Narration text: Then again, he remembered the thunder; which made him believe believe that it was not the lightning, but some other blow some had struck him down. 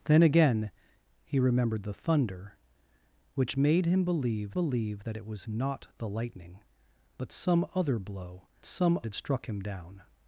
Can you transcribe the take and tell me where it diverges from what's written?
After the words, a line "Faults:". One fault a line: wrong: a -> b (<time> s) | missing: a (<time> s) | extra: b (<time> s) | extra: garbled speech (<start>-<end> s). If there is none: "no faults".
Then again, he remembered the thunder; which made him believe believe that it was not the lightning, but some other blow some had struck him down.
Faults:
no faults